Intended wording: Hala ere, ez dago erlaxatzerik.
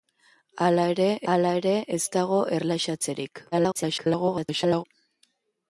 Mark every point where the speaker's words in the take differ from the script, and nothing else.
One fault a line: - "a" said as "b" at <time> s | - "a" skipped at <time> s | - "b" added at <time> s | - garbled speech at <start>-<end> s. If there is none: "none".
- "hala ere" added at 1.3 s
- garbled speech at 3.5-4.8 s